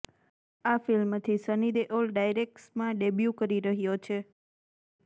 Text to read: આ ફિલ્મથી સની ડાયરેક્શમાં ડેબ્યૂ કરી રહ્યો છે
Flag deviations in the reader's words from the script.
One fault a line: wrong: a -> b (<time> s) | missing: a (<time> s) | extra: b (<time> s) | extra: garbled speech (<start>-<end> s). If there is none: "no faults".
extra: દેઓલ (1.7 s)